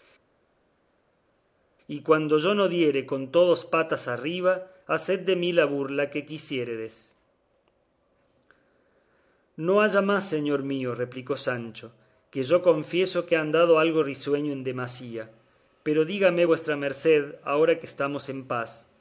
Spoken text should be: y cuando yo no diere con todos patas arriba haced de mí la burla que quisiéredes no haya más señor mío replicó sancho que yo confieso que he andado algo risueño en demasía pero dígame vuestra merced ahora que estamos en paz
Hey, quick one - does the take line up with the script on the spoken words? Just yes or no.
yes